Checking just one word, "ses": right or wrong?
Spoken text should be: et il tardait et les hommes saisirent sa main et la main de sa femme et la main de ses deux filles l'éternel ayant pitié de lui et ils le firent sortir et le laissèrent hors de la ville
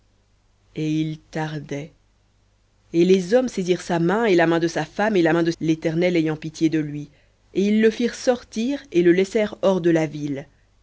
wrong